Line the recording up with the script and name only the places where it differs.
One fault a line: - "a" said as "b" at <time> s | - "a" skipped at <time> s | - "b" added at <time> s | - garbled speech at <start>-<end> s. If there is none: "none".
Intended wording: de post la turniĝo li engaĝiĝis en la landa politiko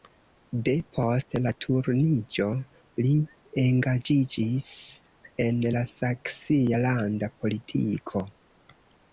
- "saksia" added at 5.9 s